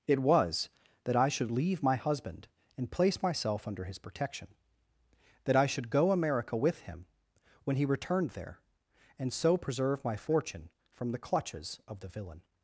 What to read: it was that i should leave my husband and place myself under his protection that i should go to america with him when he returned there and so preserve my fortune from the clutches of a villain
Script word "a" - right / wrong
wrong